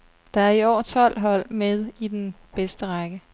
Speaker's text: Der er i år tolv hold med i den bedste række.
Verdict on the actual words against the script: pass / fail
pass